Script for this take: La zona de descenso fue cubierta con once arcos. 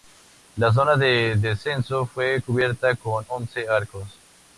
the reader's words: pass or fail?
pass